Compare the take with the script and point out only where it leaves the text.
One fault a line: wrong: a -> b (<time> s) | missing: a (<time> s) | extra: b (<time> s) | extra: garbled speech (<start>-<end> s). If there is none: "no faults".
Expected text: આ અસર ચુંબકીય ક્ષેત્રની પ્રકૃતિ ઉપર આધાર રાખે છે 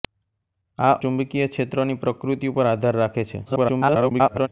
missing: અસર (0.9 s)
extra: garbled speech (3.5-4.5 s)